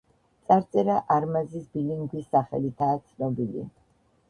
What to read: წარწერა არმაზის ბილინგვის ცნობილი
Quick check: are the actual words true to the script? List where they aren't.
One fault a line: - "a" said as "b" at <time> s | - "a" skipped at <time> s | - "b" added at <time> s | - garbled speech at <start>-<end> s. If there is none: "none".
- "სახელითაა" added at 2.4 s